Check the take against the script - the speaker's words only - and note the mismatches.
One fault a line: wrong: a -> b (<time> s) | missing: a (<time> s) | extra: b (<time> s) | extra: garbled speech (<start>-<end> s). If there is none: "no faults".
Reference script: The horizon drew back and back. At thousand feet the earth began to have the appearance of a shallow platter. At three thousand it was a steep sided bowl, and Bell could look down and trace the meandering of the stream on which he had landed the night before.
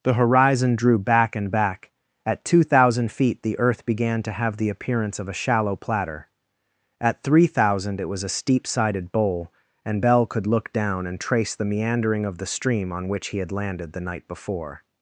extra: two (2.5 s)